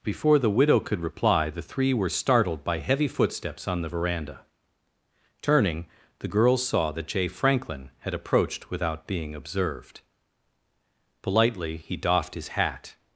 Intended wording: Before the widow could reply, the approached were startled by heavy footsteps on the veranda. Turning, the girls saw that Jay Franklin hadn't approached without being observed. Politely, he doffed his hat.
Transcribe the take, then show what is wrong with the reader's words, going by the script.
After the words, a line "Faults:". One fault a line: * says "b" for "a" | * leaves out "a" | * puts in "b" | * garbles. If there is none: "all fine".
Before the widow could reply, the three were startled by heavy footsteps on the veranda. Turning, the girls saw that Jay Franklin had approached without being observed. Politely, he doffed his hat.
Faults:
* says "three" for "approached"
* says "had" for "hadn't"